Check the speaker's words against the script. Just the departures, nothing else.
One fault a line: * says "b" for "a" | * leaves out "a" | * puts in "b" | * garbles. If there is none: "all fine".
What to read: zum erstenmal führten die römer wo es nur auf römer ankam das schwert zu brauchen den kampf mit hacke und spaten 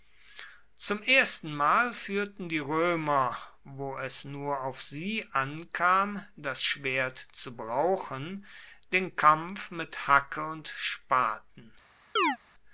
* says "sie" for "römer"